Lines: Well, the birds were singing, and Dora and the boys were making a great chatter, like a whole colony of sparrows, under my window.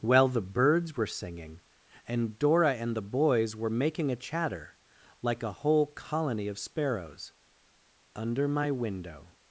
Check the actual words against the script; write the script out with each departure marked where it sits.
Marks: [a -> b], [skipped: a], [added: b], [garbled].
Well, the birds were singing, and Dora and the boys were making a [skipped: great] chatter, like a whole colony of sparrows, under my window.